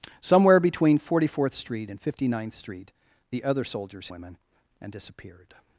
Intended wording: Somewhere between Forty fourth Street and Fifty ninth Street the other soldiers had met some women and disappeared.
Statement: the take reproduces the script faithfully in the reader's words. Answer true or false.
false